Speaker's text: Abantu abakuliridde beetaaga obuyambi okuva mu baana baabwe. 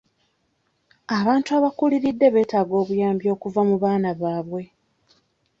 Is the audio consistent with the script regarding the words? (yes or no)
yes